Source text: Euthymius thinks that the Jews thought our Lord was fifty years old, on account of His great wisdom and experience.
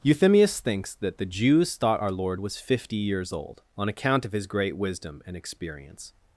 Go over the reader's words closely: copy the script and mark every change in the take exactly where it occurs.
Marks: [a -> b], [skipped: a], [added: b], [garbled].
Euthymius thinks that the Jews thought our Lord was fifty years old, on account of His great wisdom and experience.